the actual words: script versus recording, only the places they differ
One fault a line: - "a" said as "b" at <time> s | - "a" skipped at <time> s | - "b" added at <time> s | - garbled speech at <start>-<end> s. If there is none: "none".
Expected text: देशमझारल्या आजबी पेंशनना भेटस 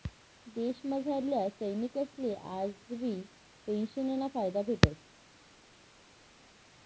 - "सैनिकसले" added at 1.5 s
- "फायदा" added at 4.3 s